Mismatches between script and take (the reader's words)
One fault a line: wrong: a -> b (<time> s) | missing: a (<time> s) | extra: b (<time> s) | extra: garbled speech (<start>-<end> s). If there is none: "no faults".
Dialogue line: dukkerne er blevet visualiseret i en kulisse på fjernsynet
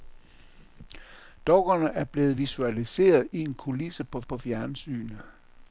extra: på (4.2 s)